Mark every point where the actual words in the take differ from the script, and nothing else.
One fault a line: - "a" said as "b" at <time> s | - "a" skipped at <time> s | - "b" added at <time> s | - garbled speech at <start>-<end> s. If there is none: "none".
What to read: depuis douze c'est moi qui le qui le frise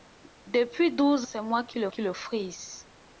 none